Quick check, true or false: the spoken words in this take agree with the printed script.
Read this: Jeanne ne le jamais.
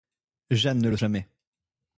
true